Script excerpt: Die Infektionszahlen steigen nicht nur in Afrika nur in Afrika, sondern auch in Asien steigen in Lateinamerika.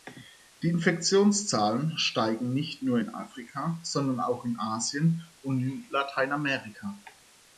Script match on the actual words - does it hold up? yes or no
no